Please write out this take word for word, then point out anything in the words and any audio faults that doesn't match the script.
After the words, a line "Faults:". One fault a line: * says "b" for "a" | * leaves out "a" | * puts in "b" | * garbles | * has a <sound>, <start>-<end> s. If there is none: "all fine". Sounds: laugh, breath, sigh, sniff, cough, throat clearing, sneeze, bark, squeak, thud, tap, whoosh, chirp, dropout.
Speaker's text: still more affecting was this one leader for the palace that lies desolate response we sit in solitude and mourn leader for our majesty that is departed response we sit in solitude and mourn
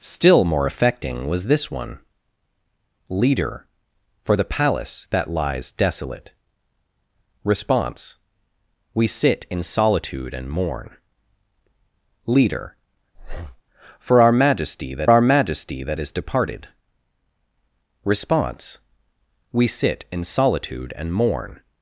still more affecting was this one leader for the palace that lies desolate response we sit in solitude and mourn leader for our majesty that our majesty that is departed response we sit in solitude and mourn
Faults:
* has a breath, 13.1-13.6 s
* puts in "our majesty that"